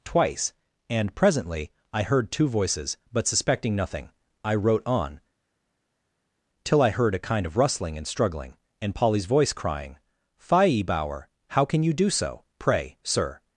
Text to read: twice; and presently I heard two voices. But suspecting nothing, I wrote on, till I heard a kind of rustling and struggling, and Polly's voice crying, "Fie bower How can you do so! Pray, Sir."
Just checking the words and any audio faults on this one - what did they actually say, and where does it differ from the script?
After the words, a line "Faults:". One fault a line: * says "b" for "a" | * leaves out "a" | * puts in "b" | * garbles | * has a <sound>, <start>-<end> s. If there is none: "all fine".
twice; and presently I heard two voices. But suspecting nothing, I wrote on, till I heard a kind of rustling and struggling, and Polly's voice crying, "Fie bower How can you do so! Pray, Sir."
Faults:
all fine